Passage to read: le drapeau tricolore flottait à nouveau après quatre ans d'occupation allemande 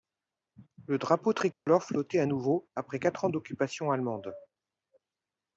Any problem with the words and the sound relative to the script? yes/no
yes